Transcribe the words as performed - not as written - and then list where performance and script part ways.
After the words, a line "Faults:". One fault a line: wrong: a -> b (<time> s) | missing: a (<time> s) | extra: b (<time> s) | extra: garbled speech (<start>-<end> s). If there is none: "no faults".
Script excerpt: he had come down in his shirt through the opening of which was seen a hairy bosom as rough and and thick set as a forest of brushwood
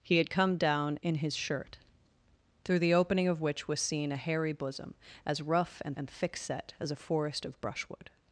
he had come down in his shirt through the opening of which was seen a hairy bosom as rough and and thick set as a forest of brushwood
Faults:
no faults